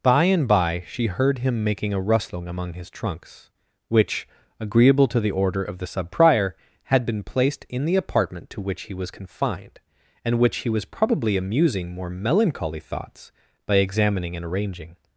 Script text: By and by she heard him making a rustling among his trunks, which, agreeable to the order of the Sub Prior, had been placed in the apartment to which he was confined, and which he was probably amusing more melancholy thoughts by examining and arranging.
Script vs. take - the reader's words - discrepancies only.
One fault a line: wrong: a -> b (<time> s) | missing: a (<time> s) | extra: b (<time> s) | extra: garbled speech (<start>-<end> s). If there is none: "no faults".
no faults